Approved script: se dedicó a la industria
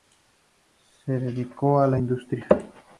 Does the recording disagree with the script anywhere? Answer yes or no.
no